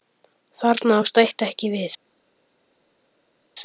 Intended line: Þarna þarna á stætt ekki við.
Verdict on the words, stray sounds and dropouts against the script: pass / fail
fail